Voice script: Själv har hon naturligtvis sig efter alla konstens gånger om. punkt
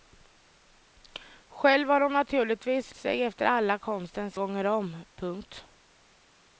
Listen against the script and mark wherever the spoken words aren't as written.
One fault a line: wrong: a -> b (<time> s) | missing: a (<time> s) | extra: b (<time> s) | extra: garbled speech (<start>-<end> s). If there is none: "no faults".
no faults